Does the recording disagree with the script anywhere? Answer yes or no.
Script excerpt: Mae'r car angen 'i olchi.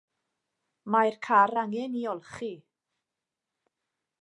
no